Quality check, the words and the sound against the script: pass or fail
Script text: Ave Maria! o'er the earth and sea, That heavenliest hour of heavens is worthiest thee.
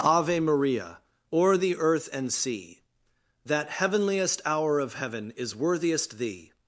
fail